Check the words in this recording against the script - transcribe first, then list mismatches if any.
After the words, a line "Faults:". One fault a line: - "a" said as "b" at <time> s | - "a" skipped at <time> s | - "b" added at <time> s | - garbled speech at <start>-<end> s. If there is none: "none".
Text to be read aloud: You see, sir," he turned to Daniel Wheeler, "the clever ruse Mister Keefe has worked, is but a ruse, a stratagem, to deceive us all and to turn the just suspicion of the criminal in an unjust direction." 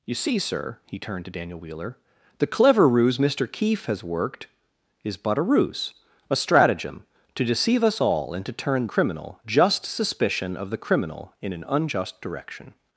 You see, sir," he turned to Daniel Wheeler, "the clever ruse Mister Keefe has worked, is but a ruse, a stratagem, to deceive us all and to turn criminal just suspicion of the criminal in an unjust direction."
Faults:
- "the" said as "criminal" at 8.8 s